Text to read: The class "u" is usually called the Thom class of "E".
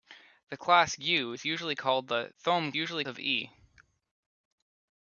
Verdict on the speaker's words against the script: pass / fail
fail